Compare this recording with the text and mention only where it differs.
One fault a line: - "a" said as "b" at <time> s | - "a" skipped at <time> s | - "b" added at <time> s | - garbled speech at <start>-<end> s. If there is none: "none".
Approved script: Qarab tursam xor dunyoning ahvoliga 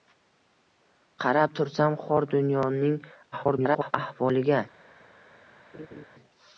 - garbled speech at 3.3-3.9 s